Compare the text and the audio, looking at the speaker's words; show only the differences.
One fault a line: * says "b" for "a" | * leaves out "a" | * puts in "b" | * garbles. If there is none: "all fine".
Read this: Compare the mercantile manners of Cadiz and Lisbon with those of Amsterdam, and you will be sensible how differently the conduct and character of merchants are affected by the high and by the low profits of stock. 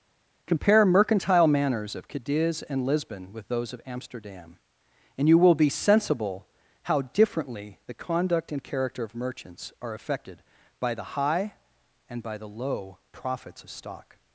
* leaves out "the"